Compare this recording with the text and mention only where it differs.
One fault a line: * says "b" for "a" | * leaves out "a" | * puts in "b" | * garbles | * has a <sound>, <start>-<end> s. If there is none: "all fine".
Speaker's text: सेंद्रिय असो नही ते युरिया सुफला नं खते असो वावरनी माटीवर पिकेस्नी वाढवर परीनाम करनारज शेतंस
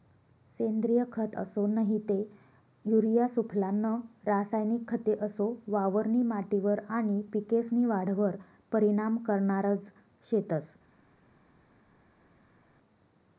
* puts in "खत"
* puts in "रासायनिक"
* puts in "आनी"